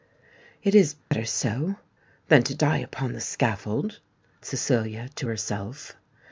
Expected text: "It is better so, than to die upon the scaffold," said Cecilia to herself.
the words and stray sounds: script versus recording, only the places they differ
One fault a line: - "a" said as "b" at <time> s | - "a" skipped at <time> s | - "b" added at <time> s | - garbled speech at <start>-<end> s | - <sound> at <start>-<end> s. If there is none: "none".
- dropout at 1.0-1.1 s
- "said" skipped at 4.0 s